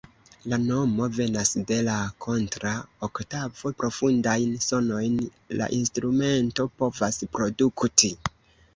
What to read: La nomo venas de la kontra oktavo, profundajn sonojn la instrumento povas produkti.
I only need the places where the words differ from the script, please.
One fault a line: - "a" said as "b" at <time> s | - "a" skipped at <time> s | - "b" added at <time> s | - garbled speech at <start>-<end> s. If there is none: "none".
none